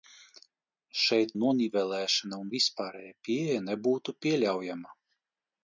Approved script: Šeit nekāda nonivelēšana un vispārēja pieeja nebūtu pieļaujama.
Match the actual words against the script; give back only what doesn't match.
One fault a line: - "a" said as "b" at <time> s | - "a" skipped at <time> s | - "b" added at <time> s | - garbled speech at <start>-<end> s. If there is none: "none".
- "nekāda" skipped at 1.3 s